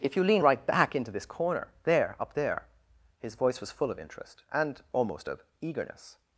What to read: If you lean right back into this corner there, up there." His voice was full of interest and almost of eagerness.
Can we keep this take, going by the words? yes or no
yes